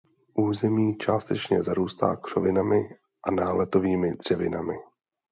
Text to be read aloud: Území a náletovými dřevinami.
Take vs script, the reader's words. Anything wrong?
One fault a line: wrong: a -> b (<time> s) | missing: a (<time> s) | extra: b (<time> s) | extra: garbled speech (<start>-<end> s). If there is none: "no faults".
extra: částečně zarůstá křovinami (0.9 s)